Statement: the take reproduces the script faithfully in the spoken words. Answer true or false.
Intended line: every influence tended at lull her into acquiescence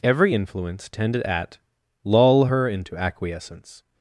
true